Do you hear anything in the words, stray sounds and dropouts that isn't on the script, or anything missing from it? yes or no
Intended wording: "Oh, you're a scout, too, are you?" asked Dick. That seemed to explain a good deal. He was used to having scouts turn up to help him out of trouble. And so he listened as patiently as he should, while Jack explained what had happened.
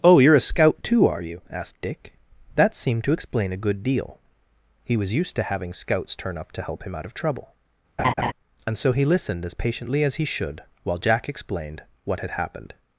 yes